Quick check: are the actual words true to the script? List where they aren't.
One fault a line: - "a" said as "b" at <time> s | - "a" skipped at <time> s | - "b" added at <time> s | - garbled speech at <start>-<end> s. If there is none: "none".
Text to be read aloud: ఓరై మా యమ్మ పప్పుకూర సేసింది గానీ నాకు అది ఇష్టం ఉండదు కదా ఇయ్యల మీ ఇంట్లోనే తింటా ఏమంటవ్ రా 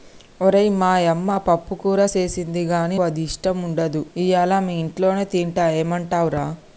- "నాకు" skipped at 3.0 s
- "కదా" skipped at 4.0 s